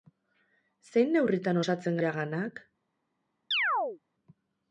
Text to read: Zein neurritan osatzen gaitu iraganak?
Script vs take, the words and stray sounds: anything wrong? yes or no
yes